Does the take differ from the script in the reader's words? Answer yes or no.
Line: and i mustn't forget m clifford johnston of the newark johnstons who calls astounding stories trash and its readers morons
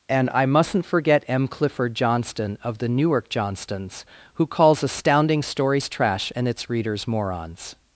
no